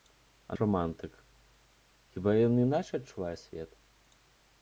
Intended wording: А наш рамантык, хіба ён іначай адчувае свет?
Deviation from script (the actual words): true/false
true